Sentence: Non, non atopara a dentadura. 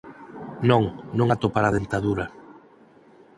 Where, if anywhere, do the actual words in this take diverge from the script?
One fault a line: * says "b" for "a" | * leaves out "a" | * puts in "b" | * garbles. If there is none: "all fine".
all fine